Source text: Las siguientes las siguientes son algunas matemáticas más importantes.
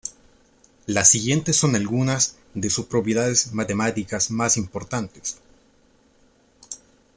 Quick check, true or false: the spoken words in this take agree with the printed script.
false